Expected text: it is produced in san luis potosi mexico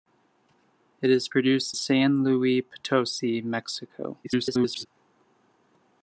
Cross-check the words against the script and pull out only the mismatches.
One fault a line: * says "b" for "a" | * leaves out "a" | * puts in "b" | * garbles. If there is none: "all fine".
* leaves out "in"
* garbles